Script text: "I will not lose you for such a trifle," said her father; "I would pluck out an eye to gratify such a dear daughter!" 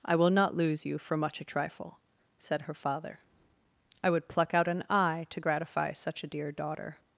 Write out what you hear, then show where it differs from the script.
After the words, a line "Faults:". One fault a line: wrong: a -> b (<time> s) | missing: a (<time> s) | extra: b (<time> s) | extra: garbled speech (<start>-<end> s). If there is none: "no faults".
"I will not lose you for much a trifle," said her father; "I would pluck out an eye to gratify such a dear daughter!"
Faults:
wrong: such -> much (1.1 s)